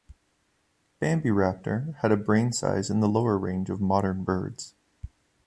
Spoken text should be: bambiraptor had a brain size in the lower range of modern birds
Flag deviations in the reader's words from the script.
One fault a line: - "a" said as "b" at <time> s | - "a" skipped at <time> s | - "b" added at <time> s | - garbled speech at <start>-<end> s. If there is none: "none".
none